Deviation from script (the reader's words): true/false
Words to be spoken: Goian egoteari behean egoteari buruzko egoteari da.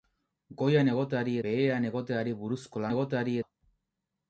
false